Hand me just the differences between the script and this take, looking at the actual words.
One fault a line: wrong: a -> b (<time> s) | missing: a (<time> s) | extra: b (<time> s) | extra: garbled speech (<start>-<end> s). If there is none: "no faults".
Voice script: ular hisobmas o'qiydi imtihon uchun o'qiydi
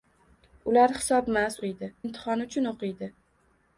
no faults